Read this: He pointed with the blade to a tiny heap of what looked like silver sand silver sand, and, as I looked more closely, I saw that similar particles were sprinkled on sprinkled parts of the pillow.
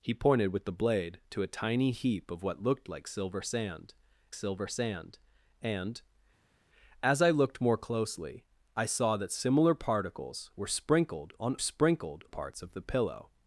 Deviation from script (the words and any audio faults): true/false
false